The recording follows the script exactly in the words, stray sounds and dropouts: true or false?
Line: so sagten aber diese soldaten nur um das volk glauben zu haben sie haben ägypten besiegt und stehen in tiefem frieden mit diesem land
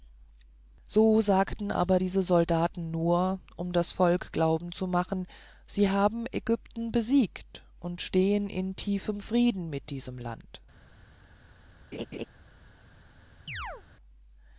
false